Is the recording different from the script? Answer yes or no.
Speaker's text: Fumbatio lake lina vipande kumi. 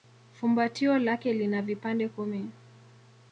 no